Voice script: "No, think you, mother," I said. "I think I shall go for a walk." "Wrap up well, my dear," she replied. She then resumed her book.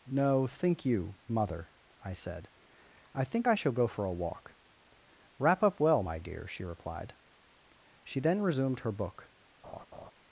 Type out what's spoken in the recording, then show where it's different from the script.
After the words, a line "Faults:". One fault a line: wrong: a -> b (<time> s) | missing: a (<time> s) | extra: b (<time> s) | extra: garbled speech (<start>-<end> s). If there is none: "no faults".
"No, think you, mother," I said. "I think I shall go for a walk." "Wrap up well, my dear," she replied. She then resumed her book.
Faults:
no faults